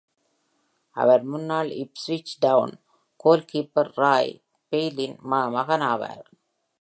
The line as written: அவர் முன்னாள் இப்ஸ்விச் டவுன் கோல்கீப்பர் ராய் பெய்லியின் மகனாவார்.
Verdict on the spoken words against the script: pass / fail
pass